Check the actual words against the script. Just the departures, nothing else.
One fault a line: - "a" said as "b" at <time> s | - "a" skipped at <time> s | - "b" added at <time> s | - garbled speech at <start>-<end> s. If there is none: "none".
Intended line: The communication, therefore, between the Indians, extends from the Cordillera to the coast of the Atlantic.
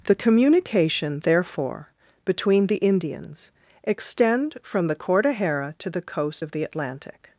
- "extends" said as "extend" at 3.8 s